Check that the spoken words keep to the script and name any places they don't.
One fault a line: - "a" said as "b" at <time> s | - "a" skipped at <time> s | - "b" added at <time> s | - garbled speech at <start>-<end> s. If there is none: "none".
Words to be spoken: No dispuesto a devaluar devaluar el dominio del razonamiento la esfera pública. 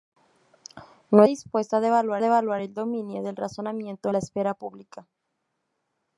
none